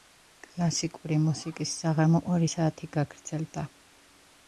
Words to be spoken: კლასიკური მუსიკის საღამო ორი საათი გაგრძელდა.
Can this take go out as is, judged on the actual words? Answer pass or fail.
pass